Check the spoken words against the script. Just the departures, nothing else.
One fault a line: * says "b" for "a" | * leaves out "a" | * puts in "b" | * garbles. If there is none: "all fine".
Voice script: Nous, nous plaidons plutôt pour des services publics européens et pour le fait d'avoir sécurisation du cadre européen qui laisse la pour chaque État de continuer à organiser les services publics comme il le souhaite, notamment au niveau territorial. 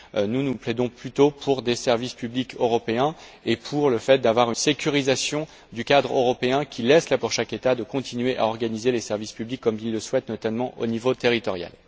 all fine